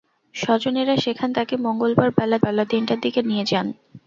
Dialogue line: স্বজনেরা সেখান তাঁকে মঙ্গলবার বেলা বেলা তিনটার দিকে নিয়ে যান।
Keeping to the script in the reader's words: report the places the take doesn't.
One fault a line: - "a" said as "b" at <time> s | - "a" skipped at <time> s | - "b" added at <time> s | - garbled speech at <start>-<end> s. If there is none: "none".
none